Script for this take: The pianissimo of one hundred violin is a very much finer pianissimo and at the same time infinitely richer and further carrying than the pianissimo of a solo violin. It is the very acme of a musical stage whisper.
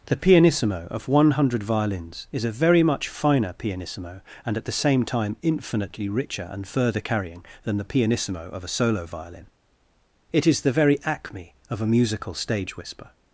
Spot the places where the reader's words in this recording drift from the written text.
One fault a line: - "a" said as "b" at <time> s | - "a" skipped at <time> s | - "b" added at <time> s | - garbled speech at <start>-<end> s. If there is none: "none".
- "violin" said as "violins" at 1.6 s